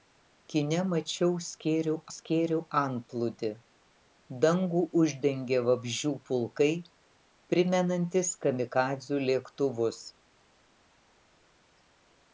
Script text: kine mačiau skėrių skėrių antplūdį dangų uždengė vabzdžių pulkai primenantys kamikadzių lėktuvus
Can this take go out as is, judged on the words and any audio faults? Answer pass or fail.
pass